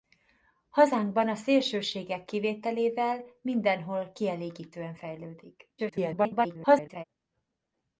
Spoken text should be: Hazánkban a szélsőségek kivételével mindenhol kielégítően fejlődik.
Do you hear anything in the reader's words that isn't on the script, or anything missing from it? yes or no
yes